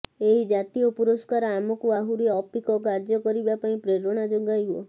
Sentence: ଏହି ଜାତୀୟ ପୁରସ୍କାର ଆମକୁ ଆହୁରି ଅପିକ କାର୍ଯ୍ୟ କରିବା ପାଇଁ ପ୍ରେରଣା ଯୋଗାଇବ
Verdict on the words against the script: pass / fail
pass